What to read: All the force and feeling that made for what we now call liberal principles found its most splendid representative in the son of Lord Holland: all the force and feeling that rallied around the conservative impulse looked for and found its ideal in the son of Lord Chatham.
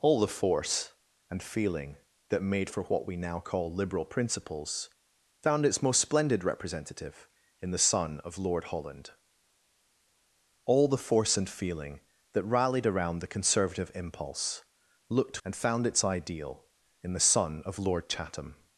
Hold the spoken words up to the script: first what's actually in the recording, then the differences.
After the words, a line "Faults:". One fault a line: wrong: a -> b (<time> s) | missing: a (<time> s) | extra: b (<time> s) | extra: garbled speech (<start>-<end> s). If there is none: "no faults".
All the force and feeling that made for what we now call liberal principles found its most splendid representative in the son of Lord Holland: all the force and feeling that rallied around the conservative impulse looked and found its ideal in the son of Lord Chatham.
Faults:
missing: for (15.4 s)